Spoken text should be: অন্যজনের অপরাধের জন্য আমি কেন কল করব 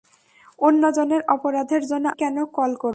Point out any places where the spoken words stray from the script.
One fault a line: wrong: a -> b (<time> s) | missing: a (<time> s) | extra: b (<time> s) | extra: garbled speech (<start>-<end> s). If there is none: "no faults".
missing: আমি (2.0 s)